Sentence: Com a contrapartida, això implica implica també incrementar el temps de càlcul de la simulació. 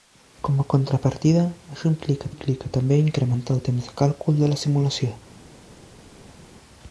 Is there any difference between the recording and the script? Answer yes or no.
no